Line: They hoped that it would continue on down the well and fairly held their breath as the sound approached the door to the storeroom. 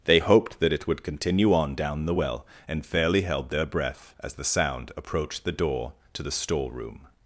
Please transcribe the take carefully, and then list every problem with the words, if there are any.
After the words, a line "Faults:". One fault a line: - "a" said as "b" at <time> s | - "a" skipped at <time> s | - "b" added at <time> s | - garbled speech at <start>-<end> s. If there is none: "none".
They hoped that it would continue on down the well and fairly held their breath as the sound approached the door to the storeroom.
Faults:
none